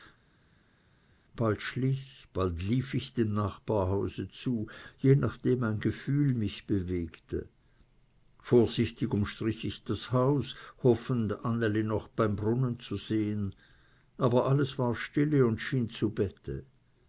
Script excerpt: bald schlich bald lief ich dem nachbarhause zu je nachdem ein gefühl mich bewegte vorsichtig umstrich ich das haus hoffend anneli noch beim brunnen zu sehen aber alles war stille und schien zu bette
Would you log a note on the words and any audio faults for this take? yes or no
no